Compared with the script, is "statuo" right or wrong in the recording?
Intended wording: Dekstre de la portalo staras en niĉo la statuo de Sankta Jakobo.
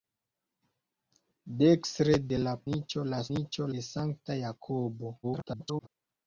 wrong